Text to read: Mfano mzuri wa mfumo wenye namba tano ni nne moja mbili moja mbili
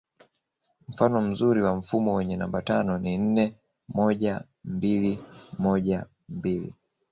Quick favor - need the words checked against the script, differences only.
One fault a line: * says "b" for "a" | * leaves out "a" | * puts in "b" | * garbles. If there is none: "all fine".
all fine